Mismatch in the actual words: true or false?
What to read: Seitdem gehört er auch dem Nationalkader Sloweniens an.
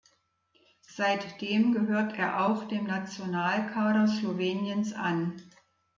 false